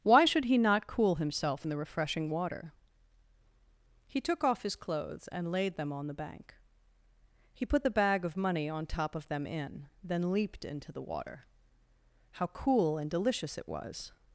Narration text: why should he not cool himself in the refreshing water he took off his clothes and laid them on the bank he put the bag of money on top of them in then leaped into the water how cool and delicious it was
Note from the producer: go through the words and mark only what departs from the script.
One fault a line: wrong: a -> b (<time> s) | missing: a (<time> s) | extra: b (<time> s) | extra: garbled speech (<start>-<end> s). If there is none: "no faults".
no faults